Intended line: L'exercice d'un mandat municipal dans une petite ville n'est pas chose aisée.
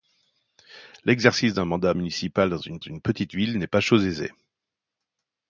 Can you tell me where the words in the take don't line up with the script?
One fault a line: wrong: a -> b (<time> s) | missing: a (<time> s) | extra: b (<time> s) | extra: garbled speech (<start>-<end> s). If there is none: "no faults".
extra: une (2.8 s)